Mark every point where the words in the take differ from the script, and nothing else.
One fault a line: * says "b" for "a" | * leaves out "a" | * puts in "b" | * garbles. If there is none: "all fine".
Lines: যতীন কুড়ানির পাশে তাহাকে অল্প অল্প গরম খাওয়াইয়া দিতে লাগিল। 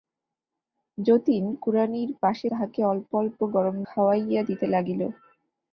all fine